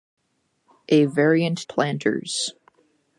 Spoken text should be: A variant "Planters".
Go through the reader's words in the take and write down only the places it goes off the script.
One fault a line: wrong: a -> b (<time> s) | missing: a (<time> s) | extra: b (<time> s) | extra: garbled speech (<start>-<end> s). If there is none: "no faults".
no faults